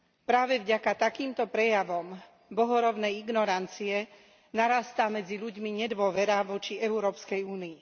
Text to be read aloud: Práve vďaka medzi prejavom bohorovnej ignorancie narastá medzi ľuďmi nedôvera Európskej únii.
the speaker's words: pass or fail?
fail